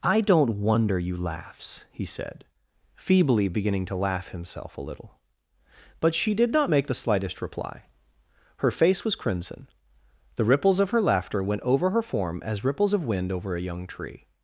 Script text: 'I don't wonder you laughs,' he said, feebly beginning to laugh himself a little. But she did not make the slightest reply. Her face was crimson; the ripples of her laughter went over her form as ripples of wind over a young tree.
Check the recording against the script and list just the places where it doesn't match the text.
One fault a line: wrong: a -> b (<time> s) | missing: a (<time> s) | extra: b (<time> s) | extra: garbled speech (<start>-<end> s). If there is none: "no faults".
no faults